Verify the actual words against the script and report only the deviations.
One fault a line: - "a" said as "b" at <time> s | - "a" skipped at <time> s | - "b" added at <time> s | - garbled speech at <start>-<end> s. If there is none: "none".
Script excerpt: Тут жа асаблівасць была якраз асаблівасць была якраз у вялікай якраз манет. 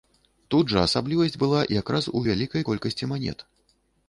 - "асаблівасць была якраз" skipped at 2.1 s
- "якраз" said as "колькасці" at 2.7 s